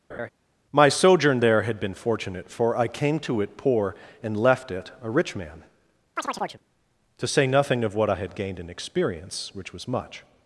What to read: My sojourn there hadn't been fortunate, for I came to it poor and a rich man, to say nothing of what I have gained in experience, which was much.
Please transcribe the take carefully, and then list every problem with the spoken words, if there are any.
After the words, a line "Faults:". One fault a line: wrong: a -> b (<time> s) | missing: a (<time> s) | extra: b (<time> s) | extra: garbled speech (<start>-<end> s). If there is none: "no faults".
My sojourn there had been fortunate, for I came to it poor and left it a rich man, to say nothing of what I had gained in experience, which was much.
Faults:
wrong: hadn't -> had (1.6 s)
extra: left it (4.4 s)
wrong: have -> had (8.2 s)